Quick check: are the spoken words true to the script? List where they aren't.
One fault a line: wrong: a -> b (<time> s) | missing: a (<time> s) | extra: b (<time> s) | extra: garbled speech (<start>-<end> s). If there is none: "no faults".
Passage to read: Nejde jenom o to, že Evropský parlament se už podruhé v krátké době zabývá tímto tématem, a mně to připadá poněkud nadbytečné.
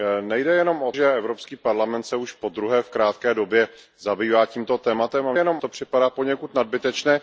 missing: to (0.9 s)
wrong: mně -> jenom (5.3 s)